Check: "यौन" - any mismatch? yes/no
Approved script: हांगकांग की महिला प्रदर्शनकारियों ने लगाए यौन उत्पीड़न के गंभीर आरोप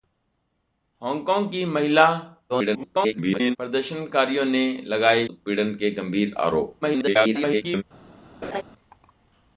yes